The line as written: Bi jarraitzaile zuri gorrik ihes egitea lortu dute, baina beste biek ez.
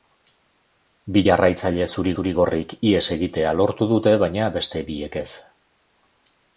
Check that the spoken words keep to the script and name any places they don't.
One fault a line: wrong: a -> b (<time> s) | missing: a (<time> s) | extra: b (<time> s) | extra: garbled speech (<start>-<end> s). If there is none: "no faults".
extra: zuri (2.2 s)